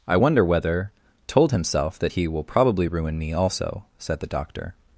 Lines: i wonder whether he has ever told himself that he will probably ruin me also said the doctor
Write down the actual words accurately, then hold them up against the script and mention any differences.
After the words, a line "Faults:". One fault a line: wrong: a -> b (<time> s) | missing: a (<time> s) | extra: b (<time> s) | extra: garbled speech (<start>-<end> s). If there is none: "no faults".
i wonder whether told himself that he will probably ruin me also said the doctor
Faults:
missing: he has ever (0.9 s)